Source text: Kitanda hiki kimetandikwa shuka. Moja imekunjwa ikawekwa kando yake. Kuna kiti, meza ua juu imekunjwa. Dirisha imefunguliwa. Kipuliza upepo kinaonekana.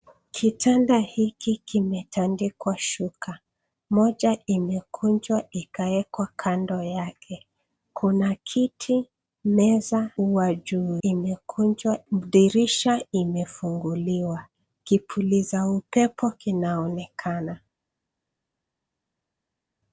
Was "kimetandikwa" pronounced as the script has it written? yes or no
yes